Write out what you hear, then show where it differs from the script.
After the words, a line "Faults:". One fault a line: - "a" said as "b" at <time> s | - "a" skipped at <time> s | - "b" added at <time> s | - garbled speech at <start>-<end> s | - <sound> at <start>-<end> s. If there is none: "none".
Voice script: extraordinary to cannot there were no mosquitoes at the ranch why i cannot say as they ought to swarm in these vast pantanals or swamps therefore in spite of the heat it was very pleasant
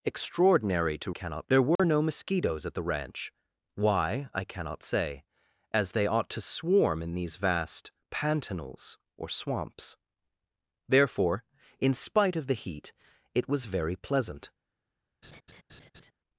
extraordinary to cannot there were no mosquitoes at the ranch why i cannot say as they ought to swarm in these vast pantanals or swamps therefore in spite of the heat it was very pleasant
Faults:
- dropout at 1.8-1.8 s
- laugh at 15.2-16.1 s